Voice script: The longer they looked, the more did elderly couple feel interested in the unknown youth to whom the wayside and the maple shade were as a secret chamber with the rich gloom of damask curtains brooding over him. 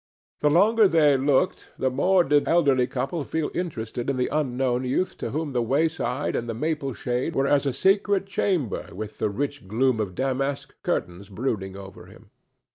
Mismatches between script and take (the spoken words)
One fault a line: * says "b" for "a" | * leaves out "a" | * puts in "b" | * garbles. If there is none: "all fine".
all fine